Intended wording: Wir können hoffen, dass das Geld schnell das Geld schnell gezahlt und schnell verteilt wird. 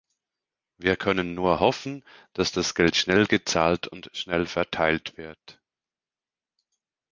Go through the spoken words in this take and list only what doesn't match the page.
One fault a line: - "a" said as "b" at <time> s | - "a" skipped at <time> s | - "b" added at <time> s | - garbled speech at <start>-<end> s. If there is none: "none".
- "nur" added at 1.3 s
- "das Geld schnell" skipped at 3.3 s